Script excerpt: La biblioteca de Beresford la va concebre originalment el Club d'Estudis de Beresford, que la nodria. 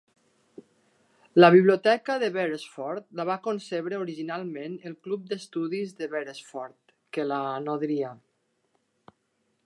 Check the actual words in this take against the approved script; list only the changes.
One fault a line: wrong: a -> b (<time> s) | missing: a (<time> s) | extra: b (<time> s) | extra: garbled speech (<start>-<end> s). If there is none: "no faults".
no faults